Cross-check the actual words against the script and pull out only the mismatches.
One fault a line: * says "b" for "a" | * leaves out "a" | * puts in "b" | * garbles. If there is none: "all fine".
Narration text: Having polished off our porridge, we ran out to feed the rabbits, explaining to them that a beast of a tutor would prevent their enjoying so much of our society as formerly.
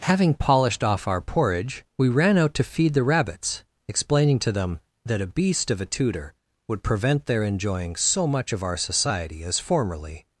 all fine